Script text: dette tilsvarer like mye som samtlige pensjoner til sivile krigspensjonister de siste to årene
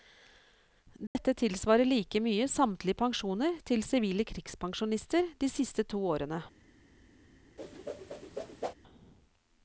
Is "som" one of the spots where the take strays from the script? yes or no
yes